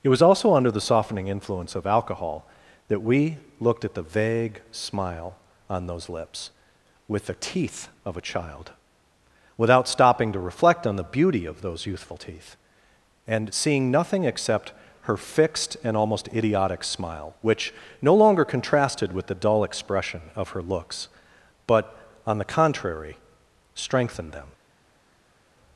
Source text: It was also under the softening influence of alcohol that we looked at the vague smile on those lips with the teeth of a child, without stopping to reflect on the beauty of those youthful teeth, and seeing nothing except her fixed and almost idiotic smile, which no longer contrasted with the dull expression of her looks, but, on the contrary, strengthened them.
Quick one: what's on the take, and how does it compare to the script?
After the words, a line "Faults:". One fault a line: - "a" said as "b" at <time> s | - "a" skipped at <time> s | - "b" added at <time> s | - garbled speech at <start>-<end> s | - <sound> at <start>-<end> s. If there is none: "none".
It was also under the softening influence of alcohol that we looked at the vague smile on those lips with the teeth of a child, without stopping to reflect on the beauty of those youthful teeth, and seeing nothing except her fixed and almost idiotic smile, which no longer contrasted with the dull expression of her looks, but, on the contrary, strengthened them.
Faults:
none